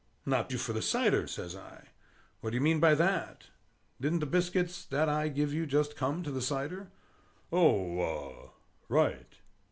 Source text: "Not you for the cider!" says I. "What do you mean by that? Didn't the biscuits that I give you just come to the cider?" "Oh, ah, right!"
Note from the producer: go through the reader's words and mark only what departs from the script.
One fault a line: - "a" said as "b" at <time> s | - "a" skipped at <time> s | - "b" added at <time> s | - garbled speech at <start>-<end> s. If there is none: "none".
none